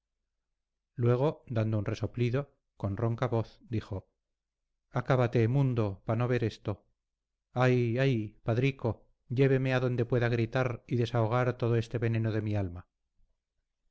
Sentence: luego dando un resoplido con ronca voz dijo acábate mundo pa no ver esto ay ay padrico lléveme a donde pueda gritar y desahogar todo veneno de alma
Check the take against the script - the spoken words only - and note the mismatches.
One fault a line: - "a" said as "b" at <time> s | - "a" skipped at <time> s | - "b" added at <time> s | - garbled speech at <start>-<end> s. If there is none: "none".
- "este" added at 11.8 s
- "mi" added at 12.4 s